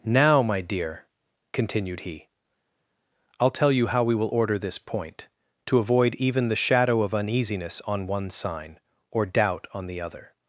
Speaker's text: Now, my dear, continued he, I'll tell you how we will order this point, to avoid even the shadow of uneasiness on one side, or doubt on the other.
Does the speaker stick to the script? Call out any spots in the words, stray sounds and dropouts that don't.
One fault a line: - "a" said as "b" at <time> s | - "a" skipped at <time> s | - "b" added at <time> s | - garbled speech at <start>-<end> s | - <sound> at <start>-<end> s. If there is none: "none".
- "side" said as "sign" at 8.3 s